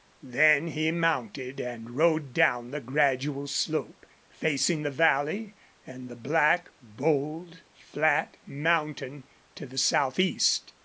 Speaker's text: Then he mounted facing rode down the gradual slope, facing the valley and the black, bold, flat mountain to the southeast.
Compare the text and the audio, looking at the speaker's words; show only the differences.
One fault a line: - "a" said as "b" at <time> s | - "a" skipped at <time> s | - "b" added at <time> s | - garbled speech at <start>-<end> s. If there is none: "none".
- "facing" said as "and" at 1.6 s